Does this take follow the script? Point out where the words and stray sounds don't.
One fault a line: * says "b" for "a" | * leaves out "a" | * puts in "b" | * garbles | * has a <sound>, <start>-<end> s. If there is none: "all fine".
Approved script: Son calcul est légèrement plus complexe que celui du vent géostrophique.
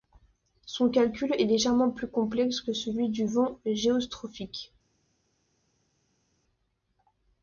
all fine